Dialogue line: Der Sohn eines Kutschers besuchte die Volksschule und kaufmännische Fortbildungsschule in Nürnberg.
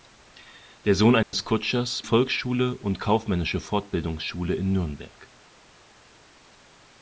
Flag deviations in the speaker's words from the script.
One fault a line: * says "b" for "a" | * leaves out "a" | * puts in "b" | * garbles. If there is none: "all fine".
* leaves out "besuchte die"